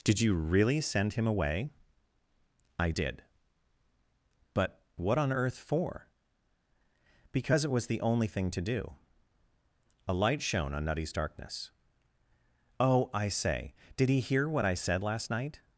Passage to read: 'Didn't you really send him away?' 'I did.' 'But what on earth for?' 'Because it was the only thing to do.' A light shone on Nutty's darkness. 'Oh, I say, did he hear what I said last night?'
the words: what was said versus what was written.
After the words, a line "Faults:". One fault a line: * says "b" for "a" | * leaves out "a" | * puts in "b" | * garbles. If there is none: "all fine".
'Did you really send him away?' 'I did.' 'But what on earth for?' 'Because it was the only thing to do.' A light shone on Nutty's darkness. 'Oh, I say, did he hear what I said last night?'
Faults:
* says "Did" for "Didn't"